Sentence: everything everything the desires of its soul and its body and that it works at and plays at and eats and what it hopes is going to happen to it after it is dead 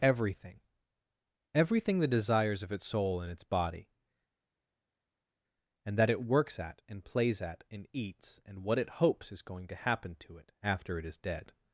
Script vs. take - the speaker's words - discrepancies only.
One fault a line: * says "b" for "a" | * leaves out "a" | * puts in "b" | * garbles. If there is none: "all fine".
all fine